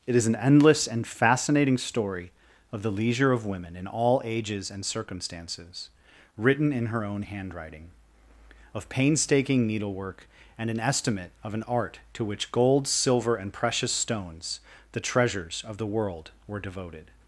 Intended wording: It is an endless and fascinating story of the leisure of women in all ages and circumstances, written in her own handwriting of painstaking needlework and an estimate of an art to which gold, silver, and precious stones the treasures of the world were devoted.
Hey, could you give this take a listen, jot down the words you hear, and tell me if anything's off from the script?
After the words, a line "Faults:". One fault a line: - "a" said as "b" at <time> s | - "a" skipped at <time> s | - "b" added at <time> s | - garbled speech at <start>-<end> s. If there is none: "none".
It is an endless and fascinating story of the leisure of women in all ages and circumstances, written in her own handwriting of painstaking needlework and an estimate of an art to which gold, silver, and precious stones the treasures of the world were devoted.
Faults:
none